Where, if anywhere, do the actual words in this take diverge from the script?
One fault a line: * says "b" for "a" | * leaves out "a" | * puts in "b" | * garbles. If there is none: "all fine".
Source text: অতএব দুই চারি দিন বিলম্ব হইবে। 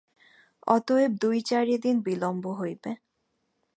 all fine